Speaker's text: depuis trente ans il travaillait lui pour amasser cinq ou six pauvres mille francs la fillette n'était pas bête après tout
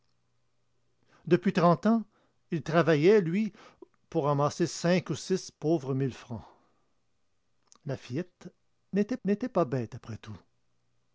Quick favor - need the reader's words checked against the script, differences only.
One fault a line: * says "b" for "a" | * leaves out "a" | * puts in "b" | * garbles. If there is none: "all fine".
* puts in "n'était"